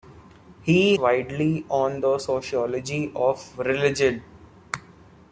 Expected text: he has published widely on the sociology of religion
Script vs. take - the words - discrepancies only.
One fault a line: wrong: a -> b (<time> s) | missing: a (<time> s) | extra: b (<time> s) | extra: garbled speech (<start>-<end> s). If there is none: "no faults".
missing: has published (1.0 s)